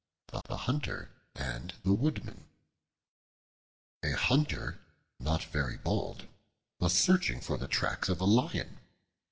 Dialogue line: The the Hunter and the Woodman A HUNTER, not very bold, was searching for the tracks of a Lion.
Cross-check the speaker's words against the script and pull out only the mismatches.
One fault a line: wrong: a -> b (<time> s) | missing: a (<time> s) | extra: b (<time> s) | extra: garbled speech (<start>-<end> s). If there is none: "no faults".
no faults